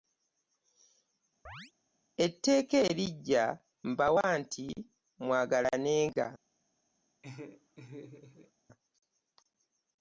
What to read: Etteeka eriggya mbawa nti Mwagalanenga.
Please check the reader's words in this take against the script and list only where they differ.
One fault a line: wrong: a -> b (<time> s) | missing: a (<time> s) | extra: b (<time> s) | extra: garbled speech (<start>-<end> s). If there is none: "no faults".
no faults